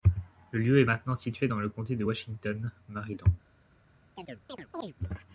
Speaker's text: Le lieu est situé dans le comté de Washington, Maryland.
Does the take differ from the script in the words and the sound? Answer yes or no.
yes